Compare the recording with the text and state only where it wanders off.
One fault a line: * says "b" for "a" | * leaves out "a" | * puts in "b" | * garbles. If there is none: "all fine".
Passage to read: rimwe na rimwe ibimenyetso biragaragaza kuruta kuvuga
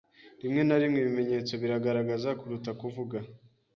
all fine